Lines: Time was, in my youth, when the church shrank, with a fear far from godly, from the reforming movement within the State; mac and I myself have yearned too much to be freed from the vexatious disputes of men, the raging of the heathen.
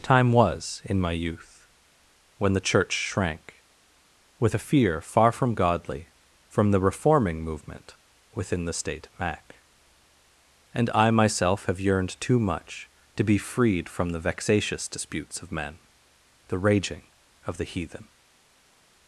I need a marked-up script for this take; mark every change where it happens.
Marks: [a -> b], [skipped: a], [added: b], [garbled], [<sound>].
Time was, in my youth, when the church shrank, with a fear far from godly, from the reforming movement within the State; mac and I myself have yearned too much to be freed from the vexatious disputes of men, the raging of the heathen.